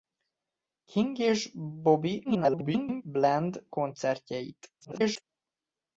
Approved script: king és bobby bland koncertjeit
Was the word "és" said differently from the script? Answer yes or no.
no